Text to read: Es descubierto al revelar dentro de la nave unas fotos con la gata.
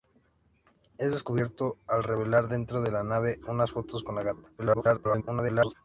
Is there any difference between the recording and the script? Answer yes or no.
yes